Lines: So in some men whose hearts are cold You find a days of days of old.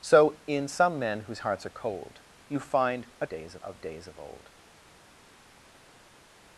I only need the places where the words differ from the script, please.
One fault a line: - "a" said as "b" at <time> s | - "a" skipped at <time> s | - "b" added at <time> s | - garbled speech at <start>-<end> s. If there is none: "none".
none